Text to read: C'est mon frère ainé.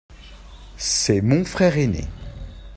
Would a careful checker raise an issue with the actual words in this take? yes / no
no